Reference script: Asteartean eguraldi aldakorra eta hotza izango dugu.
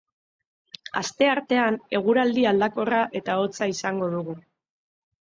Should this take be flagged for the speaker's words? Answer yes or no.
no